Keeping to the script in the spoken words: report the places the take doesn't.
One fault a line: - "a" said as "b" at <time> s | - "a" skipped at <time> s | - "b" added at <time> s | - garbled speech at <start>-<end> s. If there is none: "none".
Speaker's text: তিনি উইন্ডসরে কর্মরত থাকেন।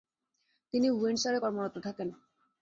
none